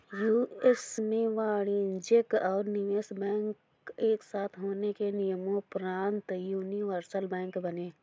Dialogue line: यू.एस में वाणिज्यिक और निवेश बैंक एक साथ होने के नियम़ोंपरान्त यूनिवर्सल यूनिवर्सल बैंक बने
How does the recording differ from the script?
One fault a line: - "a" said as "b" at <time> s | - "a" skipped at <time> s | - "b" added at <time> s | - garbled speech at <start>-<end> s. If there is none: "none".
- "यूनिवर्सल" skipped at 7.3 s